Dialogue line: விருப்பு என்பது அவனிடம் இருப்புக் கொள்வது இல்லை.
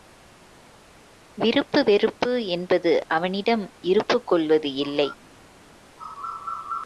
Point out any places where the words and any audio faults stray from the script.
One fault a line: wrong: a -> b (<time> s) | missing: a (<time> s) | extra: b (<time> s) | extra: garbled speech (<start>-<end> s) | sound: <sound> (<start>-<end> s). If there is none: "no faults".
extra: வெறுப்பு (1.8 s)